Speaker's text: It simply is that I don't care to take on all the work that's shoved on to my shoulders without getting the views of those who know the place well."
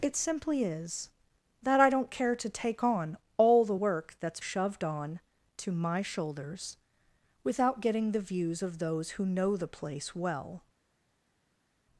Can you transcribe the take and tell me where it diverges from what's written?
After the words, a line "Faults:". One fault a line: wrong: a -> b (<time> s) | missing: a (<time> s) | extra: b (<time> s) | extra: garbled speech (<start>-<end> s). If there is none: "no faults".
It simply is that I don't care to take on all the work that's shoved on to my shoulders without getting the views of those who know the place well."
Faults:
no faults